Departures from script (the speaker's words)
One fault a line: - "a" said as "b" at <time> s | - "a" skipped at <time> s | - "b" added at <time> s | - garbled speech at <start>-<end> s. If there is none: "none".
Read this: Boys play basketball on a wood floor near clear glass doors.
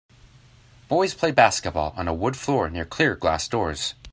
none